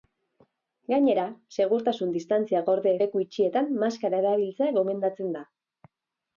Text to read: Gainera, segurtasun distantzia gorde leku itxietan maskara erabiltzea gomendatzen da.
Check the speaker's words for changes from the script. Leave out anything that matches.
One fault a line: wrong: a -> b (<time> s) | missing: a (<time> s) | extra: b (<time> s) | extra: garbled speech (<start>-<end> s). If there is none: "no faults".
no faults